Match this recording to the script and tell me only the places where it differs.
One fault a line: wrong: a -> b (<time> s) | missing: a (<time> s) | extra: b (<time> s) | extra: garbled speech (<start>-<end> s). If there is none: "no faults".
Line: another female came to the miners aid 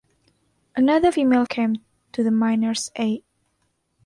no faults